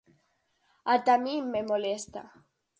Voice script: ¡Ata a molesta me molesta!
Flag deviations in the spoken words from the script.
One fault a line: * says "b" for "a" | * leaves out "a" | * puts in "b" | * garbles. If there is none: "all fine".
* says "min" for "molesta"